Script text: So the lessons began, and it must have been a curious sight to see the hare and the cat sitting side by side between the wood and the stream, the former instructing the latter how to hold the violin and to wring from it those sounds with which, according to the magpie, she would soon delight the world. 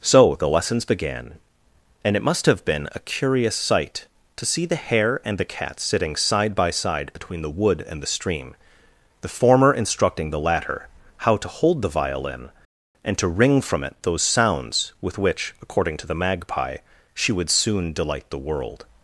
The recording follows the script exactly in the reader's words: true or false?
true